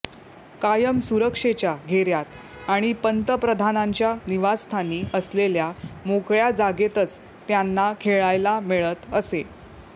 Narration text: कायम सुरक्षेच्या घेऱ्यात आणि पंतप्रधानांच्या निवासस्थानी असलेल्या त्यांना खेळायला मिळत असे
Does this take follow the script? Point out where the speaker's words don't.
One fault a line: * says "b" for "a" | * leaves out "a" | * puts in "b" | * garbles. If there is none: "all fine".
* puts in "मोकळ्या जागेतच"